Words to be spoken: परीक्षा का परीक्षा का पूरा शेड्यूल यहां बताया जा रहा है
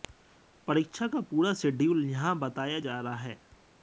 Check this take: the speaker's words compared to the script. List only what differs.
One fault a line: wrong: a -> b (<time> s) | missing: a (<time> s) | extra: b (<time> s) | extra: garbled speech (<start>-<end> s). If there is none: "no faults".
missing: परीक्षा का (1.2 s)